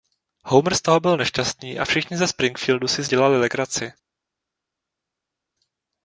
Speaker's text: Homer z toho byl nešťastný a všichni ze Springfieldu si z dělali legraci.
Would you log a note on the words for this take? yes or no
no